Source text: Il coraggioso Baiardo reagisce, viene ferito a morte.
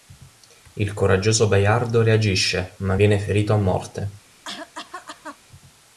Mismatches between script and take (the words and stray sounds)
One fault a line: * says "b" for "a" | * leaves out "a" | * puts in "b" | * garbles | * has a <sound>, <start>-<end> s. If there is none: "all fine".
* puts in "ma"
* has a cough, 4.4-5.4 s